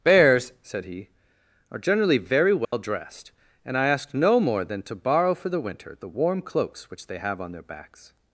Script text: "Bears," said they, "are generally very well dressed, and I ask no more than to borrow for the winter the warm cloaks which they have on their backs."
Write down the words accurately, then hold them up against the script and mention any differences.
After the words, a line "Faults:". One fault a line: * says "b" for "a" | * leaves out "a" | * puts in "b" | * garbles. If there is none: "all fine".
"Bears," said he, "are generally very well dressed, and I ask no more than to borrow for the winter the warm cloaks which they have on their backs."
Faults:
* says "he" for "they"